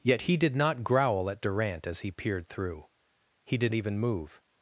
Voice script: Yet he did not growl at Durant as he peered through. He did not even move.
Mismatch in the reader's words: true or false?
true